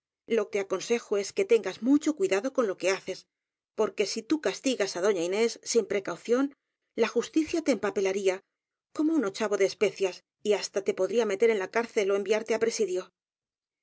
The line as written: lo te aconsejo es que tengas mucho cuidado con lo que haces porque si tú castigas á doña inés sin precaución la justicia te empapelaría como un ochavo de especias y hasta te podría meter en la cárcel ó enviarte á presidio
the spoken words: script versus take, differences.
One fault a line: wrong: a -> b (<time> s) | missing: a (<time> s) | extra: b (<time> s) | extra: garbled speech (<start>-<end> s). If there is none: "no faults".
no faults